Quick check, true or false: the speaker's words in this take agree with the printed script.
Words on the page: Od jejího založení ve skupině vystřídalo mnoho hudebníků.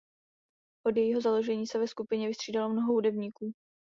false